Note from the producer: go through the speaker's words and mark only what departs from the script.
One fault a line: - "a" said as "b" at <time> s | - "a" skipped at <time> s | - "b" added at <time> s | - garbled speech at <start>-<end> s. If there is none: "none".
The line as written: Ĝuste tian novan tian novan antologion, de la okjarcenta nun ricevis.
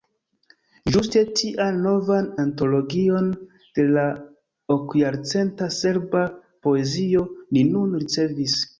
- "tian novan" skipped at 2.3 s
- "serba poezio ni" added at 5.8 s